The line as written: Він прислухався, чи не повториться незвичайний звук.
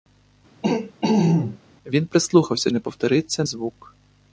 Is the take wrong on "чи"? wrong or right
wrong